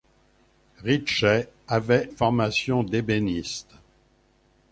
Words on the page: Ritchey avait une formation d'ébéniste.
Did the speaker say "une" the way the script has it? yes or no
no